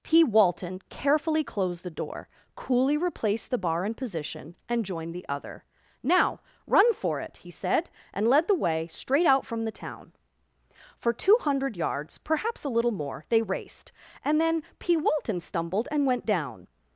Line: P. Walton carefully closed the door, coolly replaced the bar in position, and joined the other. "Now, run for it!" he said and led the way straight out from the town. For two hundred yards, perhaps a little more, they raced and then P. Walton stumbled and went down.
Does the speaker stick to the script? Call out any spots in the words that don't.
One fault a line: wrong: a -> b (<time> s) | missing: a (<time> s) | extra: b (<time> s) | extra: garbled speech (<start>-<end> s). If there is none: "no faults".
no faults